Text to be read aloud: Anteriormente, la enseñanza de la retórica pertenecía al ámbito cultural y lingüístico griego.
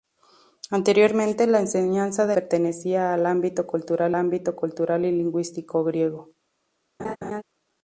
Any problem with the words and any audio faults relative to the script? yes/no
yes